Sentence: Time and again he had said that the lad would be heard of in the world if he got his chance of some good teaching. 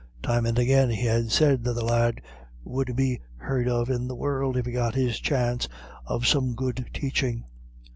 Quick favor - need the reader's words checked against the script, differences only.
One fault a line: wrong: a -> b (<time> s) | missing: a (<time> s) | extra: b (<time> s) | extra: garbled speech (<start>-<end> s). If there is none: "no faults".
no faults